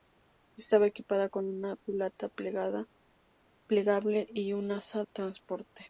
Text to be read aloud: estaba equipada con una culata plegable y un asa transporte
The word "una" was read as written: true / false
true